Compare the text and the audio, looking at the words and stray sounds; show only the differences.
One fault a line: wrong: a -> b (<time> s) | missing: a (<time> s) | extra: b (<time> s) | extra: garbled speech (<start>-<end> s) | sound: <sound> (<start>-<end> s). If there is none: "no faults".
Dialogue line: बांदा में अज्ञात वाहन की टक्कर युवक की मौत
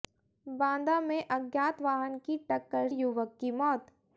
no faults